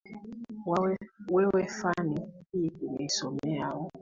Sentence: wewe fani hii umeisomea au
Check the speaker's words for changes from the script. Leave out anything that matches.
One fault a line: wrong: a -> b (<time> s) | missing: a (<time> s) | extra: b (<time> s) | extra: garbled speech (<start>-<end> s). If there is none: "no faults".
no faults